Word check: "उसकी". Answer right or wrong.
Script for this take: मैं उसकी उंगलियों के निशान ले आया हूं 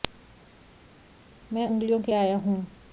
wrong